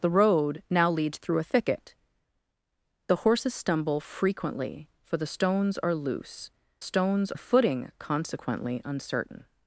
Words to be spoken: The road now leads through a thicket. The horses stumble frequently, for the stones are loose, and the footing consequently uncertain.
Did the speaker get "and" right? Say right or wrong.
wrong